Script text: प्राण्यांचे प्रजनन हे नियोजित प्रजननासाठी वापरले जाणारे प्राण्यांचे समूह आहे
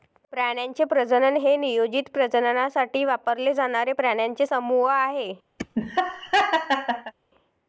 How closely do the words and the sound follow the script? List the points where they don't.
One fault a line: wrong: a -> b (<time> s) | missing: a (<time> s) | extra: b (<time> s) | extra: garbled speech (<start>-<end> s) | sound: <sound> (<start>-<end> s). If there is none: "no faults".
sound: laugh (5.6-7.1 s)